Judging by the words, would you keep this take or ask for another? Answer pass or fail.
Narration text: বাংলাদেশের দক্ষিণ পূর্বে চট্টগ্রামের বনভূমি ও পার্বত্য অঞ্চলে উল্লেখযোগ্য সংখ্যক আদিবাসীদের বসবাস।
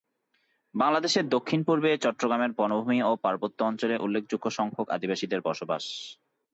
pass